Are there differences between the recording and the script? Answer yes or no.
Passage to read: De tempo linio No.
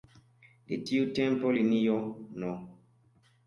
yes